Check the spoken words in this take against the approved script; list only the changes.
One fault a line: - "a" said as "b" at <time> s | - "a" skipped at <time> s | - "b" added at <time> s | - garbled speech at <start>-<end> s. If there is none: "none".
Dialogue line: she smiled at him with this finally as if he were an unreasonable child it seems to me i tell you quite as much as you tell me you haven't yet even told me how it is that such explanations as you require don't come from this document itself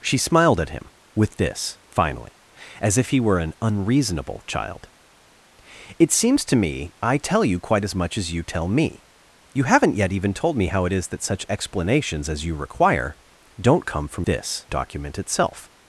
none